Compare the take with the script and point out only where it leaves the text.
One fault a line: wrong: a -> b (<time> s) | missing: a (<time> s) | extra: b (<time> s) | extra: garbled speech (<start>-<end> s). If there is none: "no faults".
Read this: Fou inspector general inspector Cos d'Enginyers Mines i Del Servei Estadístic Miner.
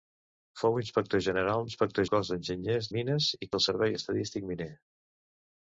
no faults